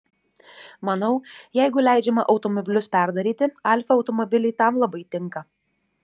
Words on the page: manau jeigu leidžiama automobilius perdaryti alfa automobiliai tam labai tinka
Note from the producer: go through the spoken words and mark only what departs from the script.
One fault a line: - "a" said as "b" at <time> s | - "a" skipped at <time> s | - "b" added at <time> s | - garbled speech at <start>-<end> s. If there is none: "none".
none